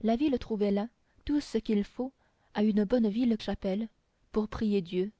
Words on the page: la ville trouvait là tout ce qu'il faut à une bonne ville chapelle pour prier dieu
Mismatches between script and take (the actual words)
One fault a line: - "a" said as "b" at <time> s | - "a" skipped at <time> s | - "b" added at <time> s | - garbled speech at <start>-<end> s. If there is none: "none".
none